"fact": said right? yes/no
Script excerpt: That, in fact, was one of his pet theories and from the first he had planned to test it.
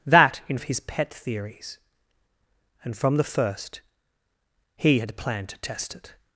no